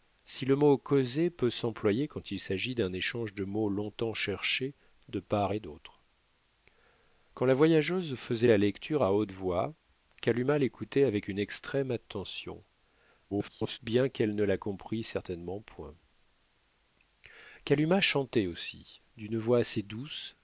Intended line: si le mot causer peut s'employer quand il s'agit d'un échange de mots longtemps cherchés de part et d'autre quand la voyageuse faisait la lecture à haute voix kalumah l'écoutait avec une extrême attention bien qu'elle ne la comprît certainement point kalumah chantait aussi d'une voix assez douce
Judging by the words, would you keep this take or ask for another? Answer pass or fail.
fail